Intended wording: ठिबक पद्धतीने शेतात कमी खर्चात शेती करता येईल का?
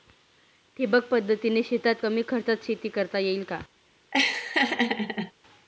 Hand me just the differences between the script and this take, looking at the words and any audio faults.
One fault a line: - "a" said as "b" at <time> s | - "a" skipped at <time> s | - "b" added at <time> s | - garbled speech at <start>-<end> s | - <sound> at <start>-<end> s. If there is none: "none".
- laugh at 4.1-5.3 s